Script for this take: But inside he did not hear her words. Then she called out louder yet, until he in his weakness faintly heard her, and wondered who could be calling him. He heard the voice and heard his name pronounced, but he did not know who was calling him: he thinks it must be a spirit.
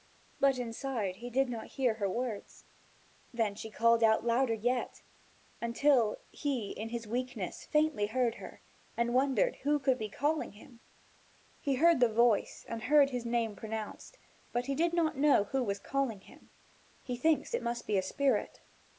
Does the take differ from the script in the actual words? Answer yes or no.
no